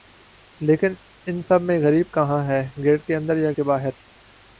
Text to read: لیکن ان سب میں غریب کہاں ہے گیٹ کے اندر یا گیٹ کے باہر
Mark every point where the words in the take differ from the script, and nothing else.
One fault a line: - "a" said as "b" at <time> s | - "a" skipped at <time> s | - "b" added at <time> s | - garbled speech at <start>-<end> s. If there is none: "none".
- "گیٹ" skipped at 3.5 s